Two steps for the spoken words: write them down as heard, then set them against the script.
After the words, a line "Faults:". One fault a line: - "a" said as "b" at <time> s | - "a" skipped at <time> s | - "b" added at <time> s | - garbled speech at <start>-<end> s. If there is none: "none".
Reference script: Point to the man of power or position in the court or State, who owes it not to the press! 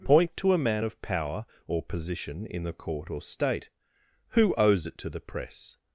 Point to a man of power or position in the court or State, who owes it to the press!
Faults:
- "the" said as "a" at 0.5 s
- "not" skipped at 5.0 s